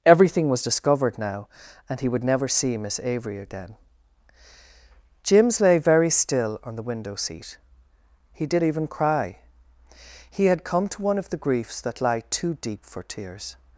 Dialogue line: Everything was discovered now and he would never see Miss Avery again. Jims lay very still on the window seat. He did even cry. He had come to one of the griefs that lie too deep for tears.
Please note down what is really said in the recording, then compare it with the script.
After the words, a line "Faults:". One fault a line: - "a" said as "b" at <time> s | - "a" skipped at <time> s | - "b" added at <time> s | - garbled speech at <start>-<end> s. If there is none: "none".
Everything was discovered now and he would never see Miss Avery again. Jims lay very still on the window seat. He did even cry. He had come to one of the griefs that lie too deep for tears.
Faults:
none